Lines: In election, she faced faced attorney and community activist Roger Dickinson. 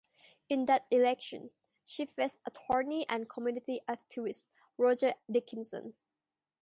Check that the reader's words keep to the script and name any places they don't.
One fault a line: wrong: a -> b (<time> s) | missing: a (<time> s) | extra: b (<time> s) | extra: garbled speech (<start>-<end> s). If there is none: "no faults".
extra: that (0.7 s)
missing: faced (2.4 s)